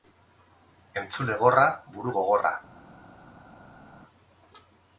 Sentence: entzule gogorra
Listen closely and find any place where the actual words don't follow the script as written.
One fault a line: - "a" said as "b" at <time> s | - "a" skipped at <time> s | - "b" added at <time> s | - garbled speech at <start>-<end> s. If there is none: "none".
- "gorra buru" added at 1.4 s